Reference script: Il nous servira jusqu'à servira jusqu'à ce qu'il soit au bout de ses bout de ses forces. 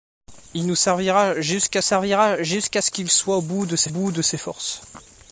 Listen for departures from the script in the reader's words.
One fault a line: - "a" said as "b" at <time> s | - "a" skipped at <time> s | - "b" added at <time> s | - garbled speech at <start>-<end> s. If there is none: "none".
none